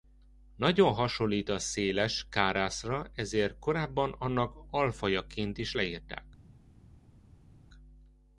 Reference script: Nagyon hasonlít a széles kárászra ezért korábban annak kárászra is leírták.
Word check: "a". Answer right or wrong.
right